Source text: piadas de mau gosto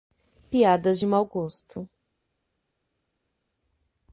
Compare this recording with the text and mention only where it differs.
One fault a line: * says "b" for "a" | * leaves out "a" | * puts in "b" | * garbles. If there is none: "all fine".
all fine